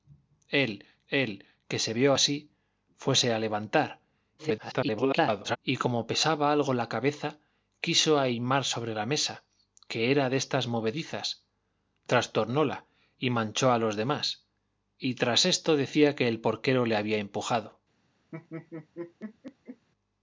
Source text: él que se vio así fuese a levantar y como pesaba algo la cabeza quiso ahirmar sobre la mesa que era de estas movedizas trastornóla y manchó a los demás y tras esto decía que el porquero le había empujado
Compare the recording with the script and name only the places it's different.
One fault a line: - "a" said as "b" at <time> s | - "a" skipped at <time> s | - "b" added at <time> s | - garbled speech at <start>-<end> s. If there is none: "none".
- "él" added at 1.1 s
- garbled speech at 4.4-5.6 s